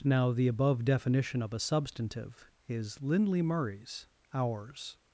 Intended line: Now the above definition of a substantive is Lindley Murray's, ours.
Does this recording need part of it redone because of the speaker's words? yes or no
no